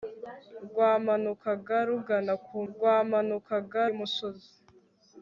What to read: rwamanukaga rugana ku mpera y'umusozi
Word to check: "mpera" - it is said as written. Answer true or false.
false